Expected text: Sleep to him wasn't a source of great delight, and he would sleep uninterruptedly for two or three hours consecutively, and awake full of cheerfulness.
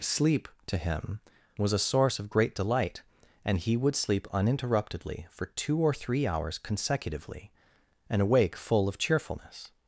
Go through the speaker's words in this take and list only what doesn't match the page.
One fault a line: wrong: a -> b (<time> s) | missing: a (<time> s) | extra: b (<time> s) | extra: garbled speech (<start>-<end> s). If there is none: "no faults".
wrong: wasn't -> was (1.6 s)